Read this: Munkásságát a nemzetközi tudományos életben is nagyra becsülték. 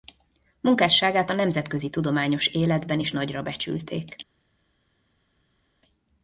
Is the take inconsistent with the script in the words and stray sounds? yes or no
no